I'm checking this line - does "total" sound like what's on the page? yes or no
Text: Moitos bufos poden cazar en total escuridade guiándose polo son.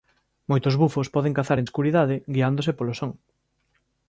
no